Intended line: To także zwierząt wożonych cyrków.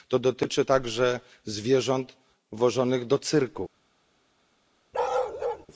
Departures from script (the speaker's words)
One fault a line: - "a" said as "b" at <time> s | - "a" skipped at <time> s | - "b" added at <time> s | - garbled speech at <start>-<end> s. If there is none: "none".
- "dotyczy" added at 0.2 s
- "do" added at 3.1 s